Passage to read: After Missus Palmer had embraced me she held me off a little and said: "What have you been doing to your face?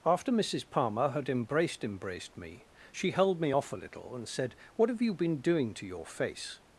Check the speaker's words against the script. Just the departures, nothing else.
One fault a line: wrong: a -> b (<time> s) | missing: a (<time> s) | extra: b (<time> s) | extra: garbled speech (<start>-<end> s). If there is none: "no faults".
extra: embraced (1.8 s)